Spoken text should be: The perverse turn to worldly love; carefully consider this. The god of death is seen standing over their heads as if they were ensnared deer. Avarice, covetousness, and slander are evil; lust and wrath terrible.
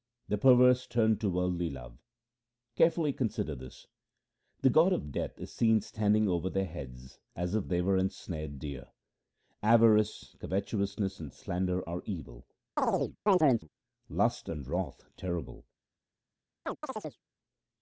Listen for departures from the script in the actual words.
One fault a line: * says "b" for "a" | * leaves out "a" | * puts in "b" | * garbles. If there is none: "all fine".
all fine